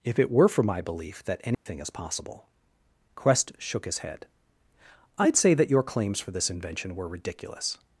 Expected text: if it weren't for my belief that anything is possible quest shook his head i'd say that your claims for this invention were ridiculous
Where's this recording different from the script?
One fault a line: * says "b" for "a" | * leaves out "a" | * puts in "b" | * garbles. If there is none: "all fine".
* says "were" for "weren't"